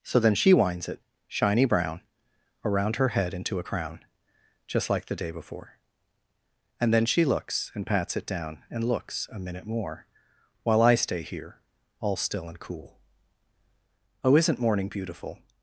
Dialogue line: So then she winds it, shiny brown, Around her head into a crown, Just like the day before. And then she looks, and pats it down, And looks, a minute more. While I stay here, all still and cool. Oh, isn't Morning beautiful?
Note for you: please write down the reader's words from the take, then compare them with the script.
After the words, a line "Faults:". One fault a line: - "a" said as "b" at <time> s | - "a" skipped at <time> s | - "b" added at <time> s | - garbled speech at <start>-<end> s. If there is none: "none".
So then she winds it, shiny brown, Around her head into a crown, Just like the day before. And then she looks, and pats it down, And looks, a minute more. While I stay here, all still and cool. Oh, isn't Morning beautiful?
Faults:
none